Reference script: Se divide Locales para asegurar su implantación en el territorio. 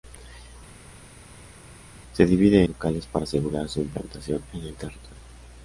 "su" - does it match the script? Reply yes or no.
yes